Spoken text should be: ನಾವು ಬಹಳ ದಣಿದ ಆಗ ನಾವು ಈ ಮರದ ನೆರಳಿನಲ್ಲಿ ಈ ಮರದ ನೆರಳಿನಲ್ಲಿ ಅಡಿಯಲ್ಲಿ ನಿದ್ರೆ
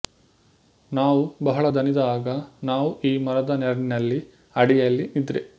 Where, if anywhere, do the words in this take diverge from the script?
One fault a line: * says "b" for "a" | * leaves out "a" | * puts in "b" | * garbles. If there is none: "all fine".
* leaves out "ಈ ಮರದ ನೆರಳಿನಲ್ಲಿ"